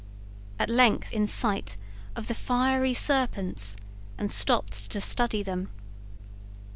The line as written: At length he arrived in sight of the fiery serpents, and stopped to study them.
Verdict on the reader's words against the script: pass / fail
fail